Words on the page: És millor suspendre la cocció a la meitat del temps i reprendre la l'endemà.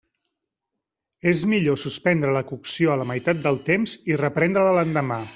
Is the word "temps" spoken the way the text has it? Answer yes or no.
yes